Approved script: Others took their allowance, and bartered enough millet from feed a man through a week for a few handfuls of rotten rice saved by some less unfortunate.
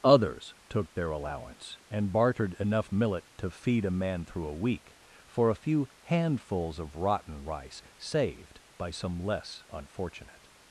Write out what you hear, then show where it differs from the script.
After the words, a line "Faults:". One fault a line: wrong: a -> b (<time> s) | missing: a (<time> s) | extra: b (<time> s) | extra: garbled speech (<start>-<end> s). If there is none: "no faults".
Others took their allowance, and bartered enough millet to feed a man through a week for a few handfuls of rotten rice saved by some less unfortunate.
Faults:
wrong: from -> to (3.4 s)